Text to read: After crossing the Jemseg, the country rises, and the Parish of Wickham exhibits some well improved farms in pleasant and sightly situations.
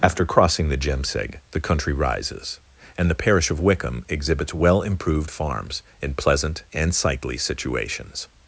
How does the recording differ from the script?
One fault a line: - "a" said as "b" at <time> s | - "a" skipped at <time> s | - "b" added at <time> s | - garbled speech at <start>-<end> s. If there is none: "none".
- "some" skipped at 4.5 s